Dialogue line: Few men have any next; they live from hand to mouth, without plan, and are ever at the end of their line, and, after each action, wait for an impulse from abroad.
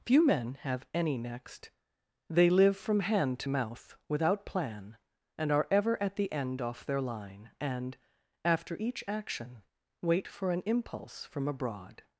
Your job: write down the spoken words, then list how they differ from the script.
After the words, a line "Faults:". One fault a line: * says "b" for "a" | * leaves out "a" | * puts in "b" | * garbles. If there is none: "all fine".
Few men have any next; they live from hand to mouth, without plan, and are ever at the end off their line, and, after each action, wait for an impulse from abroad.
Faults:
* says "off" for "of"